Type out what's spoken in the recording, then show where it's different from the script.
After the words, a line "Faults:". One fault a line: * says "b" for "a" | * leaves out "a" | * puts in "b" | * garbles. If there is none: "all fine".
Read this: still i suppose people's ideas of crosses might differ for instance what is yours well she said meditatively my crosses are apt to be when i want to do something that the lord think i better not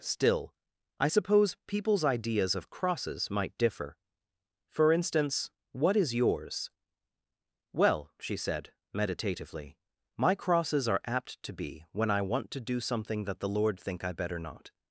still i suppose people's ideas of crosses might differ for instance what is yours well she said meditatively my crosses are apt to be when i want to do something that the lord think i better not
Faults:
all fine